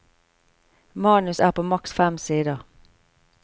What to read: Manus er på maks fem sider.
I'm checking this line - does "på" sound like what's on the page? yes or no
yes